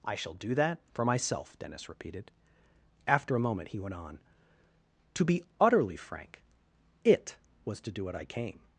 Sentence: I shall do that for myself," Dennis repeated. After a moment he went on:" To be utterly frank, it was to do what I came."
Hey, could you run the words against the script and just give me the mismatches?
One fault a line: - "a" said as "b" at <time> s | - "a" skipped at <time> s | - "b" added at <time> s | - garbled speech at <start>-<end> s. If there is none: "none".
none